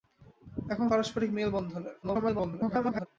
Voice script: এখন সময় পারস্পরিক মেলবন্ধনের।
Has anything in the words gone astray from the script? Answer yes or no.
yes